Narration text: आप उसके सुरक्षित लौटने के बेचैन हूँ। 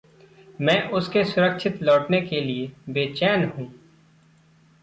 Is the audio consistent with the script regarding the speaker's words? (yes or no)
no